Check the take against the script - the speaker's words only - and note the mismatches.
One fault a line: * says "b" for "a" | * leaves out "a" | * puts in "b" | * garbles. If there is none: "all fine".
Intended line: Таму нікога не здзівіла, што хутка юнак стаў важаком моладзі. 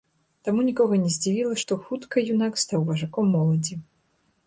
all fine